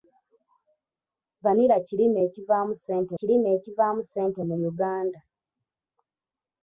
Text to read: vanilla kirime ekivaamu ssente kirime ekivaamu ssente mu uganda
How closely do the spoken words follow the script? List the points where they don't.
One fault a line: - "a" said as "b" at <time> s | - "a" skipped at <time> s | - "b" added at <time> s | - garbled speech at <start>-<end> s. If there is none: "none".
none